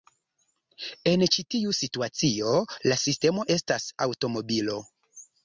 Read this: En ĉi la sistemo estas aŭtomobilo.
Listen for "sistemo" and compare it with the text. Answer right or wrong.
right